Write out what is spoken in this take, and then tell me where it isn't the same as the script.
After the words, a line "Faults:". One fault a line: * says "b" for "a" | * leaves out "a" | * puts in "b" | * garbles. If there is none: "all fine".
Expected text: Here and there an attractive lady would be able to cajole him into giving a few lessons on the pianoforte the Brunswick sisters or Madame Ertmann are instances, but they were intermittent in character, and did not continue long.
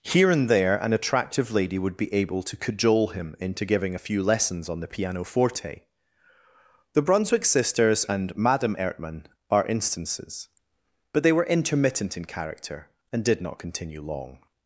Here and there an attractive lady would be able to cajole him into giving a few lessons on the pianoforte the Brunswick sisters and Madame Ertmann are instances, but they were intermittent in character, and did not continue long.
Faults:
* says "and" for "or"